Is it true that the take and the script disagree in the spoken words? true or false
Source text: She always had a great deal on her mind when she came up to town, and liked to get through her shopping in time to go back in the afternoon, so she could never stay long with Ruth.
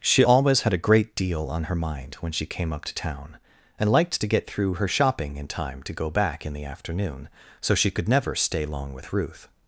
false